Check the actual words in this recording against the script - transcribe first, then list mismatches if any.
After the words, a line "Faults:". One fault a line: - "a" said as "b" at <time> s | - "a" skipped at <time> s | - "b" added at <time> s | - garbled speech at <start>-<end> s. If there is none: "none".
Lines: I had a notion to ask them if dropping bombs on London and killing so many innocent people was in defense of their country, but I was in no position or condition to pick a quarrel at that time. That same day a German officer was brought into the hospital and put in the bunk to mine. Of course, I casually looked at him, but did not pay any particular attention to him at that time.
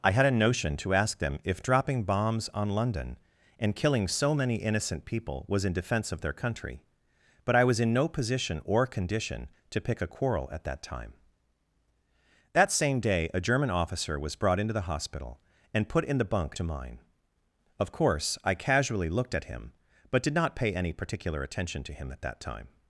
I had a notion to ask them if dropping bombs on London and killing so many innocent people was in defense of their country, but I was in no position or condition to pick a quarrel at that time. That same day a German officer was brought into the hospital and put in the bunk to mine. Of course, I casually looked at him, but did not pay any particular attention to him at that time.
Faults:
none